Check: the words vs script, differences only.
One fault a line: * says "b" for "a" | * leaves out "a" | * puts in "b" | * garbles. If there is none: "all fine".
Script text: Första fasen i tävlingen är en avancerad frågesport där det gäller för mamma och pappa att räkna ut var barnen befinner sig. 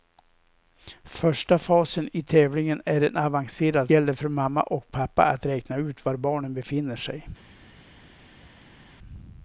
* leaves out "frågesport där det"